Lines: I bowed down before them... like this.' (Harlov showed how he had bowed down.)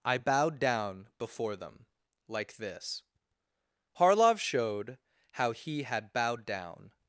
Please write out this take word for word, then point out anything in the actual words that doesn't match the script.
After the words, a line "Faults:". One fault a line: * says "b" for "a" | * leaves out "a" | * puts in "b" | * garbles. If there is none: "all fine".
I bowed down before them... like this.' (Harlov showed how he had bowed down.)
Faults:
all fine